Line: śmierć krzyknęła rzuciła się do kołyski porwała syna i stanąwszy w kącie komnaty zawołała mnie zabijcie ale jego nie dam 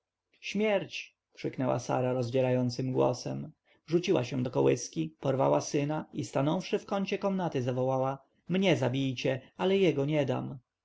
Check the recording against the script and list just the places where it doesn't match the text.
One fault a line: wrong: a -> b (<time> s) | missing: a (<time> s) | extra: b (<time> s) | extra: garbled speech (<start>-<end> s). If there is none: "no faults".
extra: sara rozdzierającym głosem (1.8 s)